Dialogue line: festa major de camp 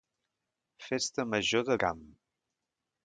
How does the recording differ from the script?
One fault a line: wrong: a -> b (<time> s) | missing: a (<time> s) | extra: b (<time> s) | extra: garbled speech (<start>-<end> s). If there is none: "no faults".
no faults